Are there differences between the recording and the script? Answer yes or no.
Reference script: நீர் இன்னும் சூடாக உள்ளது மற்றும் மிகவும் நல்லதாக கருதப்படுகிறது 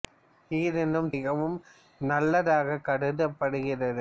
yes